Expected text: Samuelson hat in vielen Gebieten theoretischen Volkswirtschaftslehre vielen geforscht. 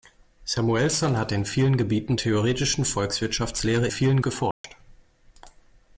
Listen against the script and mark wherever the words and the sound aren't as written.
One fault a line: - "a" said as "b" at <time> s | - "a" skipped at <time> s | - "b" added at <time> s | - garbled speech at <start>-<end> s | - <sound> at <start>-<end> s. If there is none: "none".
- dropout at 4.5-4.6 s